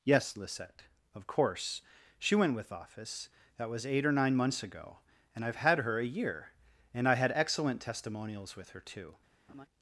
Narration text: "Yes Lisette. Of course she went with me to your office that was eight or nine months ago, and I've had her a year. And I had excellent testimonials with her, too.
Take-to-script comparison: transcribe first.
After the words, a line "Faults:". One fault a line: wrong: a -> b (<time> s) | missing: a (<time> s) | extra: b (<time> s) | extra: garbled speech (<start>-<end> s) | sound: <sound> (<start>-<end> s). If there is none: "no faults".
"Yes Lisette. Of course she went with office that was eight or nine months ago, and I've had her a year. And I had excellent testimonials with her, too.
Faults:
missing: me to your (2.7 s)
sound: laugh (9.5-9.7 s)